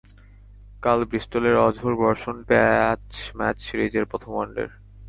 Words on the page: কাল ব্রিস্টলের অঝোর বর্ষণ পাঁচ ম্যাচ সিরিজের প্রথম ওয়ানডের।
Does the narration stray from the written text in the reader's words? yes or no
no